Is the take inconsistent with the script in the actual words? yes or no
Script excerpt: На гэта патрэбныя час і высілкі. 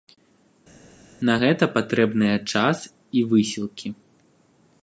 no